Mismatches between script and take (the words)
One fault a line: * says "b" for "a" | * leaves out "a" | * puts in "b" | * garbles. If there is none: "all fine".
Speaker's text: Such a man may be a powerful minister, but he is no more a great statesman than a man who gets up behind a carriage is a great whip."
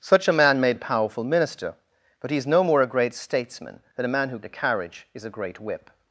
* leaves out "be"
* leaves out "gets up behind"